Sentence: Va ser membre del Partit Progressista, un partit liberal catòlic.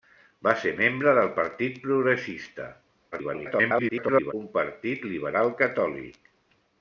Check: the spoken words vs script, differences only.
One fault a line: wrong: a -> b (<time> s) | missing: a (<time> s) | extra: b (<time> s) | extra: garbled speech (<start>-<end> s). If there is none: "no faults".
extra: garbled speech (3.1-4.3 s)